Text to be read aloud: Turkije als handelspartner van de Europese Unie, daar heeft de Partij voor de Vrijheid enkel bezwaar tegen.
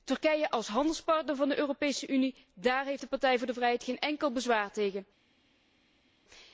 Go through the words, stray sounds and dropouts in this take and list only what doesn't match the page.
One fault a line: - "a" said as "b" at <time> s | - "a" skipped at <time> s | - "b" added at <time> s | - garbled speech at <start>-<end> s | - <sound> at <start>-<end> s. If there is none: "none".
- "geen" added at 3.8 s